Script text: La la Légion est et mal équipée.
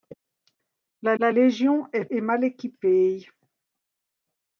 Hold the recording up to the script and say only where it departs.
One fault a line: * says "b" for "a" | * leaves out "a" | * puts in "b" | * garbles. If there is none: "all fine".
all fine